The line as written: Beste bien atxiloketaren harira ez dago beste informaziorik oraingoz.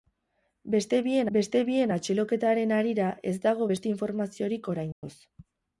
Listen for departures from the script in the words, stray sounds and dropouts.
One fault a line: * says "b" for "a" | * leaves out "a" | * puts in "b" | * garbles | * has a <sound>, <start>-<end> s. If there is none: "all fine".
* puts in "beste bien"
* has a dropout, 4.9-5.0 s